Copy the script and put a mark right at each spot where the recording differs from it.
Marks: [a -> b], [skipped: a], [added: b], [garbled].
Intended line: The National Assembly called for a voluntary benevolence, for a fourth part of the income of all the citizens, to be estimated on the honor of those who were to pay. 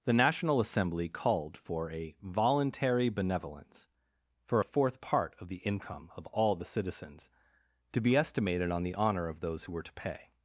The National Assembly called for a voluntary benevolence, for a fourth part of the income of all the citizens, to be estimated on the honor of those who were to pay.